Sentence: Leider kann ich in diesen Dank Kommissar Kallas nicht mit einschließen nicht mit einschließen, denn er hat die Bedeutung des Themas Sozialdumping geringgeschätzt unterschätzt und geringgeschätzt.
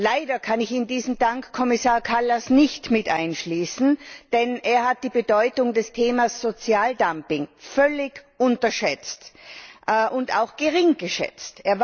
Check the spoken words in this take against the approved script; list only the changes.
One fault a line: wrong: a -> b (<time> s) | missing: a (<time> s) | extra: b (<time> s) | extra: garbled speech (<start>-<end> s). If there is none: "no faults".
missing: nicht mit einschließen (4.0 s)
wrong: geringgeschätzt -> völlig (7.6 s)
extra: auch (10.4 s)